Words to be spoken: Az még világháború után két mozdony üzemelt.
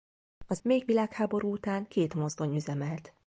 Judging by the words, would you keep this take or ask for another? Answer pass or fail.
pass